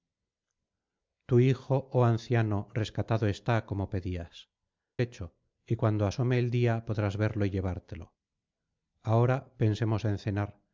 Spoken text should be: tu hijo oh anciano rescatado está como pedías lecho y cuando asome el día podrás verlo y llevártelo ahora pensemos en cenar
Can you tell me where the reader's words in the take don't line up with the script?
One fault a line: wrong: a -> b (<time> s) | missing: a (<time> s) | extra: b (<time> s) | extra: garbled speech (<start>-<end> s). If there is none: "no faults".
no faults